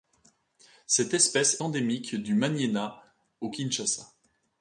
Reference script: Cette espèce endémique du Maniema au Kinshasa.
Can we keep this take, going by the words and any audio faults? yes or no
yes